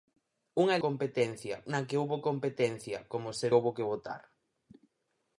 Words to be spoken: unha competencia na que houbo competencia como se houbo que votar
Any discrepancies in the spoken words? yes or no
no